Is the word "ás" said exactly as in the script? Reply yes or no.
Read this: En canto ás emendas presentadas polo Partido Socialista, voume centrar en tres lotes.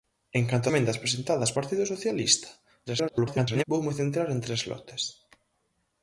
no